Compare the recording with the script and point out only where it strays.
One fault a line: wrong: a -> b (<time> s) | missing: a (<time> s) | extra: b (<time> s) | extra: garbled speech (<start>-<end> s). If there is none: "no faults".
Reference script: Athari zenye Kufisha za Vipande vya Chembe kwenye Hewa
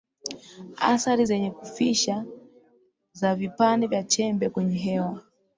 no faults